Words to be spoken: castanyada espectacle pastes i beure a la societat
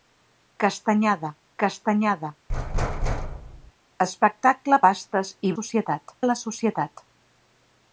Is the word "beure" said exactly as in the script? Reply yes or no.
no